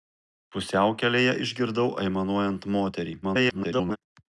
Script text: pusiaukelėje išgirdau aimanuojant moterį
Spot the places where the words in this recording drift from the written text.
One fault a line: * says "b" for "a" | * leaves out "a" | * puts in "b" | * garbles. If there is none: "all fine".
* garbles